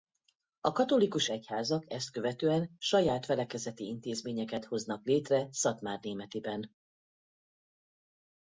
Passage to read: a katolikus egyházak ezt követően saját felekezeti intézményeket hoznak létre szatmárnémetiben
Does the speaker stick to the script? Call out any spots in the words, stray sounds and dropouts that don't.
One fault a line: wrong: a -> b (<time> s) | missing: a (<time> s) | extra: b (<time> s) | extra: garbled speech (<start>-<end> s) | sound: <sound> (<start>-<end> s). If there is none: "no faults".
no faults